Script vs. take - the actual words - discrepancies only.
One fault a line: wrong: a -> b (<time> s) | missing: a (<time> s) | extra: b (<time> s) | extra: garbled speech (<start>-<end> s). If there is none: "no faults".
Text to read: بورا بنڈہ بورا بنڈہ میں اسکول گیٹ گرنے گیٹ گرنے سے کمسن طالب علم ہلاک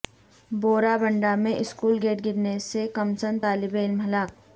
missing: بورا بنڈہ (1.4 s)
missing: گیٹ گرنے (2.6 s)